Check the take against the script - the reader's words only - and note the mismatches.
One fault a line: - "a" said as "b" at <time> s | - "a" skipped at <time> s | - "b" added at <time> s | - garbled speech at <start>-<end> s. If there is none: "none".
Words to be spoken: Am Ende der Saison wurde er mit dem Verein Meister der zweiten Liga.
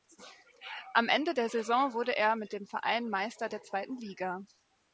none